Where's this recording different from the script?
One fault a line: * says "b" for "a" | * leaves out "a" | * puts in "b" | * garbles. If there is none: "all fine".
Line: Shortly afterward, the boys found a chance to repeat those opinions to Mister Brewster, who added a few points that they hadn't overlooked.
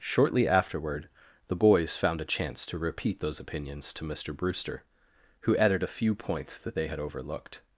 * says "had" for "hadn't"